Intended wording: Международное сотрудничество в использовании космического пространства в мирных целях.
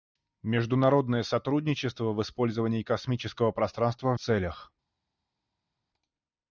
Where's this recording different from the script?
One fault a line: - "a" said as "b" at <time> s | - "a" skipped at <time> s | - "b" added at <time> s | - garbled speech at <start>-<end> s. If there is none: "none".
- "мирных" skipped at 4.2 s